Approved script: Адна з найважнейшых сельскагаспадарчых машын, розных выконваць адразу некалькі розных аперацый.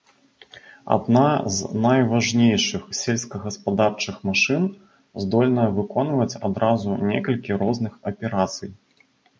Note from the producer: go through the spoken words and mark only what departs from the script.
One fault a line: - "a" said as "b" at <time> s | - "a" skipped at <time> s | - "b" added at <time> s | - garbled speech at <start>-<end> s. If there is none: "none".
- "розных" said as "здольная" at 5.3 s